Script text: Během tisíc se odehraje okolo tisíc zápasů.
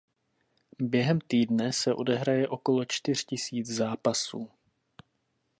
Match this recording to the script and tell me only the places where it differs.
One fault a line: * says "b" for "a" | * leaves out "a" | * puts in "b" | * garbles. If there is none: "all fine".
* says "týdne" for "tisíc"
* puts in "čtyř"